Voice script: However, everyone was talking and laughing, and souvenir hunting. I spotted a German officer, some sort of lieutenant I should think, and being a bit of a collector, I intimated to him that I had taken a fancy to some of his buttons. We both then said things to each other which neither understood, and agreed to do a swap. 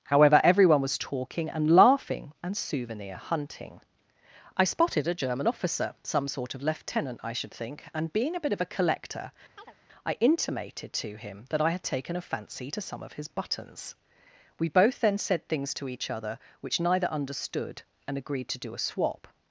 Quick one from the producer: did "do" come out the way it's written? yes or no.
yes